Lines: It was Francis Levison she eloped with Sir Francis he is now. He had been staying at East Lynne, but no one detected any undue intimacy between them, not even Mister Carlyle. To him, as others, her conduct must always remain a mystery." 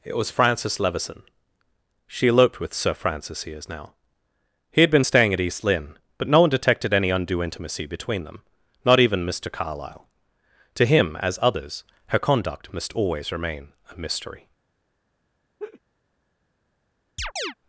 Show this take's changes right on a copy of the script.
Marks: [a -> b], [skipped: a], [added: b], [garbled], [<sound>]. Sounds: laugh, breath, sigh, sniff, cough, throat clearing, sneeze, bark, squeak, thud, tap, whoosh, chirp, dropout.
It was Francis Levison she eloped with Sir Francis he is now. He had been staying at East Lynne, but no one detected any undue intimacy between them, not even Mister Carlyle. To him, as others, her conduct must always remain a mystery." [laugh] [chirp]